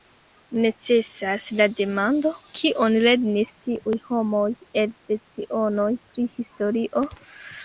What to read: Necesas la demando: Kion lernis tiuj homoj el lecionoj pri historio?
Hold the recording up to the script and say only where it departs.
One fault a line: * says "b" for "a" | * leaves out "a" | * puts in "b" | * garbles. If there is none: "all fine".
all fine